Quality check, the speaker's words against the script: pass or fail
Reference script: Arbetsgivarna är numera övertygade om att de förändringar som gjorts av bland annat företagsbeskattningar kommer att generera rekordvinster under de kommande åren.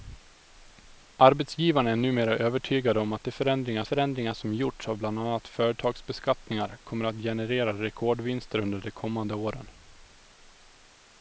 fail